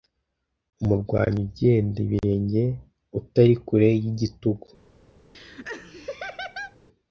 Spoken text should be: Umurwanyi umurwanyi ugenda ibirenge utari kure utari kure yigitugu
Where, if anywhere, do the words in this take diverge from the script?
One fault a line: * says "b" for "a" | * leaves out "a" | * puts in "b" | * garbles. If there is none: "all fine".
* leaves out "umurwanyi"
* leaves out "utari kure"